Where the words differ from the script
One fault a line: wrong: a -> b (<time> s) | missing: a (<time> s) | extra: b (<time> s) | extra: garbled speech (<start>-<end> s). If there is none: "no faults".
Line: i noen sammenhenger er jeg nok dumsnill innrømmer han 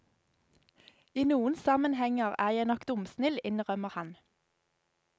no faults